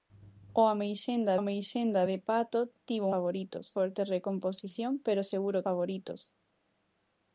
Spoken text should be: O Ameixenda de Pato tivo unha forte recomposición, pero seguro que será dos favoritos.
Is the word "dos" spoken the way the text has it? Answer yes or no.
no